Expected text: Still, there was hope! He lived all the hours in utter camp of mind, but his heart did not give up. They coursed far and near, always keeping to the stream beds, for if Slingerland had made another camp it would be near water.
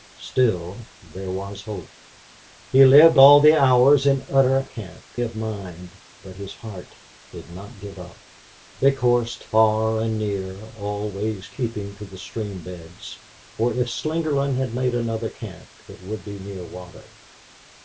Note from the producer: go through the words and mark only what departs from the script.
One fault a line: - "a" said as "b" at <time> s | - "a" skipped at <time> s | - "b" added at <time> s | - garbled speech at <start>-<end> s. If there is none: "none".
none